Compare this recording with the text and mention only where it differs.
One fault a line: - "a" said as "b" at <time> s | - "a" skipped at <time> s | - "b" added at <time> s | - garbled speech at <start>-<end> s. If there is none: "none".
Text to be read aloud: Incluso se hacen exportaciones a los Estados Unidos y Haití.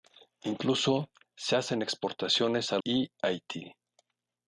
- "los Estados Unidos" skipped at 2.8 s